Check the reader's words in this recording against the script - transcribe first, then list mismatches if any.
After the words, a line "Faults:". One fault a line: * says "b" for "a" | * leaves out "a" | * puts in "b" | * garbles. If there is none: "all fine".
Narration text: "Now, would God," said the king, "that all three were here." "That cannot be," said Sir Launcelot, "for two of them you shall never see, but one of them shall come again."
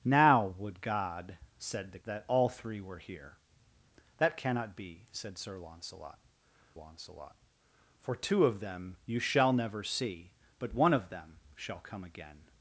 "Now, would God," said the "that all three were here." "That cannot be," said Sir Launcelot Launcelot, "for two of them you shall never see, but one of them shall come again."
Faults:
* leaves out "king"
* puts in "Launcelot"